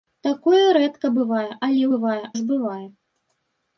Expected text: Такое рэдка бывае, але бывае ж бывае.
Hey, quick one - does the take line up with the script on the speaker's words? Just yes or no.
yes